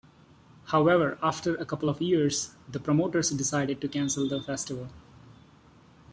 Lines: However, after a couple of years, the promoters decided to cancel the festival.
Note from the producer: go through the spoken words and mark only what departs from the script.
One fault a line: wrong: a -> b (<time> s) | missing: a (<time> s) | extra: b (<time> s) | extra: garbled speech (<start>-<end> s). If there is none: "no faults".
no faults